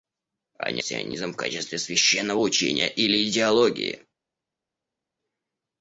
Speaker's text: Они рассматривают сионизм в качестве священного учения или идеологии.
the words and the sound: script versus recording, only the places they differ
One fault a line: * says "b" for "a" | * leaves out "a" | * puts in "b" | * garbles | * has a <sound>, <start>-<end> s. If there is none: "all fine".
* leaves out "рассматривают"